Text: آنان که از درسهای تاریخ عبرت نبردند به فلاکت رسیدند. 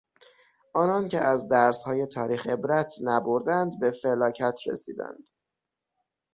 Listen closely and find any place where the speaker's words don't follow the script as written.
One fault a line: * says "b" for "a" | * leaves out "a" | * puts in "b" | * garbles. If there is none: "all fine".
all fine